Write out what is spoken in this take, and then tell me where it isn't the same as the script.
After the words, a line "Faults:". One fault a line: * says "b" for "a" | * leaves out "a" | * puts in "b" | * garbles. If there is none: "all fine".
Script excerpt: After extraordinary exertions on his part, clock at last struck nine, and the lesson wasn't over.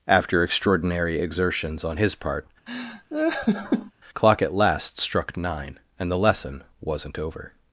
After extraordinary exertions on his part, clock at last struck nine, and the lesson wasn't over.
Faults:
all fine